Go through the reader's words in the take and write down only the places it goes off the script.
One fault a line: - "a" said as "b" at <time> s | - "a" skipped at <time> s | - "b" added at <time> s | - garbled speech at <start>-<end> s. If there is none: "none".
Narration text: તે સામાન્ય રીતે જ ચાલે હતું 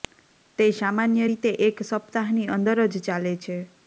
- "એક સપ્તાહની અંદર" added at 1.7 s
- "હતું" said as "છે" at 3.4 s